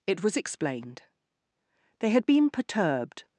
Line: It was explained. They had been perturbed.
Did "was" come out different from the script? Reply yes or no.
no